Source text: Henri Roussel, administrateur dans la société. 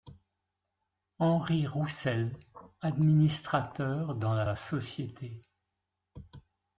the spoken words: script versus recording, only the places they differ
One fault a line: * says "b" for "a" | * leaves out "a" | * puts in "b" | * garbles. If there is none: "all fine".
* puts in "la"